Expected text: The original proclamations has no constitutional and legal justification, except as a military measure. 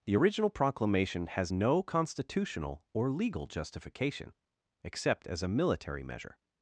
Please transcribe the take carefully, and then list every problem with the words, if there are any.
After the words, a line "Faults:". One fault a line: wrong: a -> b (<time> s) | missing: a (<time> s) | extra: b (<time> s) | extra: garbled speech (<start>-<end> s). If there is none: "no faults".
The original proclamation has no constitutional or legal justification, except as a military measure.
Faults:
wrong: proclamations -> proclamation (0.5 s)
wrong: and -> or (2.9 s)